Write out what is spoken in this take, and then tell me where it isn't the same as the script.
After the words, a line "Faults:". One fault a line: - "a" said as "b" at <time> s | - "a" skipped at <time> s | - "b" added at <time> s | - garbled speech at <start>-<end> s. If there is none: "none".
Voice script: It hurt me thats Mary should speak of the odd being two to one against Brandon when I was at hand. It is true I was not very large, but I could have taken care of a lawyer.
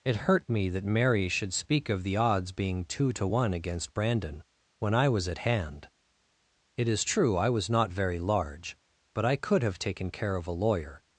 It hurt me that Mary should speak of the odds being two to one against Brandon when I was at hand. It is true I was not very large, but I could have taken care of a lawyer.
Faults:
- "thats" said as "that" at 0.7 s
- "odd" said as "odds" at 2.2 s